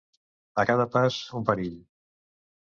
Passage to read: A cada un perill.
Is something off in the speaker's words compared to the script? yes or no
yes